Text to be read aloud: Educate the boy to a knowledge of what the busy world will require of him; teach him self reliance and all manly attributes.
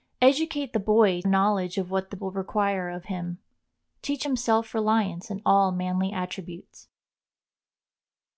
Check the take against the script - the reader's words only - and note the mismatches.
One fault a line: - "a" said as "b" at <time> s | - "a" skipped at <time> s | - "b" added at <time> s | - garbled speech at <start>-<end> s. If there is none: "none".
- "to" skipped at 1.2 s
- "busy world" skipped at 2.2 s